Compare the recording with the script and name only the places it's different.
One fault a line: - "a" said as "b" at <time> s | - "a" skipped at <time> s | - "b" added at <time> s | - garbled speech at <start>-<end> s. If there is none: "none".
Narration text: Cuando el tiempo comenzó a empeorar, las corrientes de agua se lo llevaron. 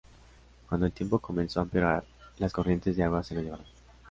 none